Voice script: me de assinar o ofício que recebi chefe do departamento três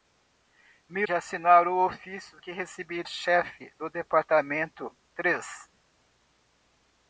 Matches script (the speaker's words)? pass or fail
pass